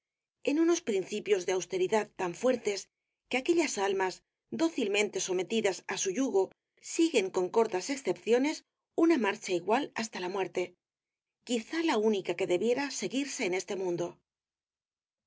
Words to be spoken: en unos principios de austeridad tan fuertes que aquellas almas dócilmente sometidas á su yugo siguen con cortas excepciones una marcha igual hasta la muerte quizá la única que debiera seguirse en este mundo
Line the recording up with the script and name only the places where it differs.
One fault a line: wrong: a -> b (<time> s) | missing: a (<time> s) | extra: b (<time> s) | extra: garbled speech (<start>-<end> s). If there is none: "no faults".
no faults